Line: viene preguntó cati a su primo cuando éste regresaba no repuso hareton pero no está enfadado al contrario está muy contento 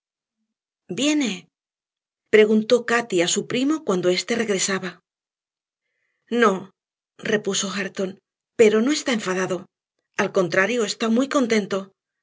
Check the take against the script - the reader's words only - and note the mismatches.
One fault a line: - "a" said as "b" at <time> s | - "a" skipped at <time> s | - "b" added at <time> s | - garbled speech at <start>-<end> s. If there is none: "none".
none